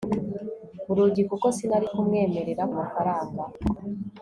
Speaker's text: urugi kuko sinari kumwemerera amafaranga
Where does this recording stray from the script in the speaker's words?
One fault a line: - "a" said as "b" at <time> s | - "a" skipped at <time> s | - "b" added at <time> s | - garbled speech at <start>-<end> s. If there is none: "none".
none